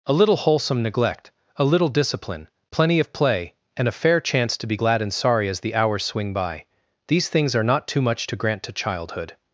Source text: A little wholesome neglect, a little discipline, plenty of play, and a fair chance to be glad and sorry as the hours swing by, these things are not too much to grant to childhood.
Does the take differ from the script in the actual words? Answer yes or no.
no